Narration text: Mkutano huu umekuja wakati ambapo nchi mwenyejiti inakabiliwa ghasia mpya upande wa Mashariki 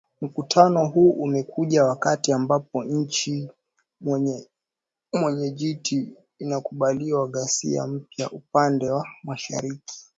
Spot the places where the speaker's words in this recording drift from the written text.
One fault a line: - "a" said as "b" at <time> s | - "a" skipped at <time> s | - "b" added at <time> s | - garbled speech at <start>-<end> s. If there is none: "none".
none